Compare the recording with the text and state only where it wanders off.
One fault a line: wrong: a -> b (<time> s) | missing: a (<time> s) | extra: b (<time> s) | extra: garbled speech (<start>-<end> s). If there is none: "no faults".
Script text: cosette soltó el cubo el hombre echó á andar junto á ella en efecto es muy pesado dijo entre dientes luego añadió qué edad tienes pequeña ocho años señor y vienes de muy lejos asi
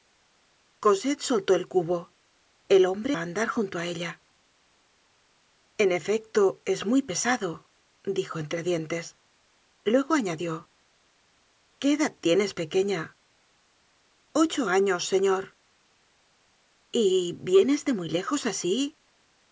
missing: echó (3.1 s)